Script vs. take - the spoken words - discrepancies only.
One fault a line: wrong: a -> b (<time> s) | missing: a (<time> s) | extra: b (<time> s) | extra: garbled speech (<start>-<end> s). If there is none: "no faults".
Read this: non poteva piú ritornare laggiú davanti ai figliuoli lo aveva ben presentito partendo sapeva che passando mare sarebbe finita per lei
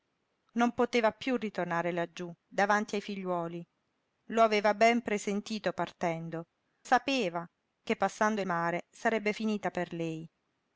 no faults